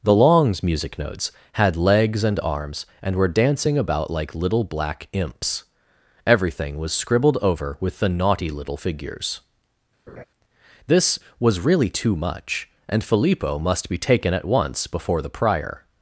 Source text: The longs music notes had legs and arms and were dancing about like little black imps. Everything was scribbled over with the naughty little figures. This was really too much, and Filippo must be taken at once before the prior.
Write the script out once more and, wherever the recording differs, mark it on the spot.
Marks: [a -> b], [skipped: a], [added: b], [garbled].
The longs music notes had legs and arms and were dancing about like little black imps. Everything was scribbled over with the naughty little figures. This was really too much, and Filippo must be taken at once before the prior.